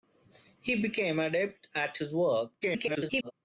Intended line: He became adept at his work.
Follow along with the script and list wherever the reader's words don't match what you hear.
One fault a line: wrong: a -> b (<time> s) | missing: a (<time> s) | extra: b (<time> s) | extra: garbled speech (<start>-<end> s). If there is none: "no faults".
extra: garbled speech (2.6-3.3 s)